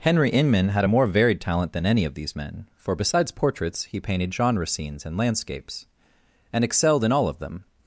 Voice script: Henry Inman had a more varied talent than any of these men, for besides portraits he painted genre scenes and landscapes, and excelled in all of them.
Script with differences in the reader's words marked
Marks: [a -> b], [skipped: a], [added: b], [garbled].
Henry Inman had a more varied talent than any of these men, for besides portraits he painted genre scenes and landscapes, and excelled in all of them.